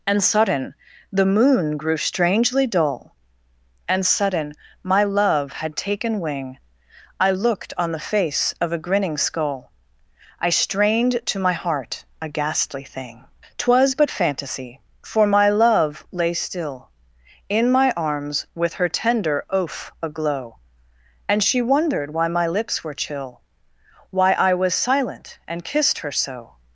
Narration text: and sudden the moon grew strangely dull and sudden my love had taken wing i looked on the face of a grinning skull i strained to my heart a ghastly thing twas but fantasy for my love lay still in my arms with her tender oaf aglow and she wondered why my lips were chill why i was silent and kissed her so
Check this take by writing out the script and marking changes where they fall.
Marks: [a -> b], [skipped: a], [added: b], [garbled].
and sudden the moon grew strangely dull and sudden my love had taken wing i looked on the face of a grinning skull i strained to my heart a ghastly thing twas but fantasy for my love lay still in my arms with her tender oaf aglow and she wondered why my lips were chill why i was silent and kissed her so